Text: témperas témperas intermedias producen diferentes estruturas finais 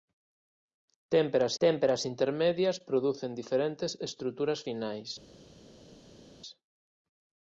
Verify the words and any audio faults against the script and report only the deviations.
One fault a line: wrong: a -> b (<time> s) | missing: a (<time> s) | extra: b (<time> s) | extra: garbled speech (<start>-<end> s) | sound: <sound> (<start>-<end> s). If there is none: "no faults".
no faults